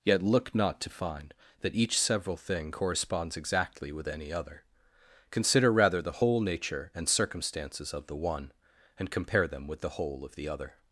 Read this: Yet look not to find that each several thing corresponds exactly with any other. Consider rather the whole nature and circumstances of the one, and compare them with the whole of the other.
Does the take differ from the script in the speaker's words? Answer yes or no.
no